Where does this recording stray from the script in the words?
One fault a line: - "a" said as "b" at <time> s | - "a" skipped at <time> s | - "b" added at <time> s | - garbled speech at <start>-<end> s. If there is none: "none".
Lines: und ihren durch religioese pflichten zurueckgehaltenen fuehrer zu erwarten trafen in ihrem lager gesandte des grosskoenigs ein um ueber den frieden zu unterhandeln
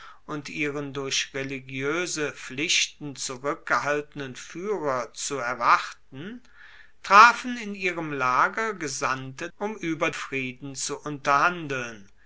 - "des grosskoenigs ein" skipped at 9.5 s
- "den" skipped at 10.1 s